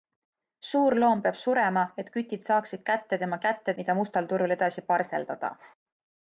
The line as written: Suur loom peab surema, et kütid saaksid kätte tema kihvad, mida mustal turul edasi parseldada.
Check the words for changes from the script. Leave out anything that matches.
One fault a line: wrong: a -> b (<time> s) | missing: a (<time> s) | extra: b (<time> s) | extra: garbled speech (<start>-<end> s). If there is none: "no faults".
wrong: kihvad -> kätte (3.5 s)